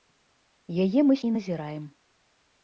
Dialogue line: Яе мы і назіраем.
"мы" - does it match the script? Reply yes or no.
yes